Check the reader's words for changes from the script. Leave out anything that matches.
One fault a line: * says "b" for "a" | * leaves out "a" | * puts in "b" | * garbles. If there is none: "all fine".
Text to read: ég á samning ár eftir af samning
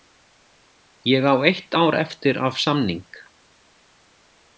* says "eitt" for "samning"